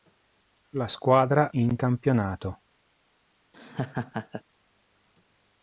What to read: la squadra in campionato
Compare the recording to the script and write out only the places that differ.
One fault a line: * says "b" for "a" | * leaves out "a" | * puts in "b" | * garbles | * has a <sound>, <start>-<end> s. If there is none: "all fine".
* has a laugh, 3.5-4.4 s